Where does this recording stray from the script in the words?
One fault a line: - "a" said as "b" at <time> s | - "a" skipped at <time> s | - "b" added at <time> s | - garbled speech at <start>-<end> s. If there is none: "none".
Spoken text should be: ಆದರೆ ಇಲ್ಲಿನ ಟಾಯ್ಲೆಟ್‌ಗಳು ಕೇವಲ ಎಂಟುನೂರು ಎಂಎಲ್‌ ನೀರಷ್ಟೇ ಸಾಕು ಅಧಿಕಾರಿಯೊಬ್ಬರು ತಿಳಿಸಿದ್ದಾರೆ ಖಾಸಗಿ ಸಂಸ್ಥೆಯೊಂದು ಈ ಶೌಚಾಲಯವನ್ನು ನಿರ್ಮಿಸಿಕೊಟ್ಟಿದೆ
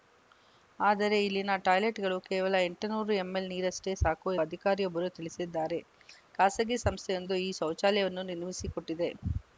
none